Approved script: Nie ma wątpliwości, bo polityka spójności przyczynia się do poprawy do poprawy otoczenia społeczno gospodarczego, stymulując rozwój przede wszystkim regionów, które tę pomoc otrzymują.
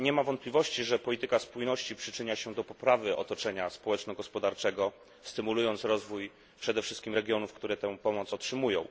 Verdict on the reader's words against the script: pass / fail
fail